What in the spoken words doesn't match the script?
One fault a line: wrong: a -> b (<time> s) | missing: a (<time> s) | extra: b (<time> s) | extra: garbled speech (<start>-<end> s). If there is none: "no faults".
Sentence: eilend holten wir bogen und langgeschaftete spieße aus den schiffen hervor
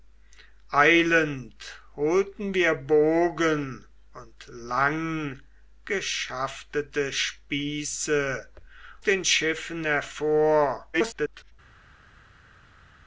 missing: aus (8.5 s)
extra: garbled speech (10.9-11.5 s)